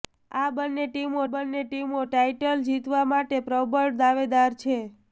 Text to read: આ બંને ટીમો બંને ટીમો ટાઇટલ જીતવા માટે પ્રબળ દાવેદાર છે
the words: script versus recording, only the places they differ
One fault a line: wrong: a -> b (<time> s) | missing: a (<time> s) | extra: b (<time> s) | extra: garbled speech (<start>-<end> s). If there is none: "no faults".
no faults